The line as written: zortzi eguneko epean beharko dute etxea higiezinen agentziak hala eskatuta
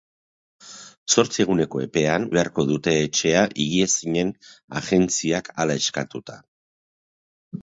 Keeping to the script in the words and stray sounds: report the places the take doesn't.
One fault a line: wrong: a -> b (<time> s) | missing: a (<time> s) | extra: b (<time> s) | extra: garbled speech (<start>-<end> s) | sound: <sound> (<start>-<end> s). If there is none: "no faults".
no faults